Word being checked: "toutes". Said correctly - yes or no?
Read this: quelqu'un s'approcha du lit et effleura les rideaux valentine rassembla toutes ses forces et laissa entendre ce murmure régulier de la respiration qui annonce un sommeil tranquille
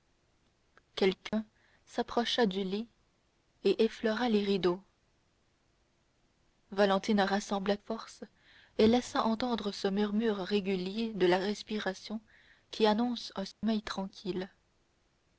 no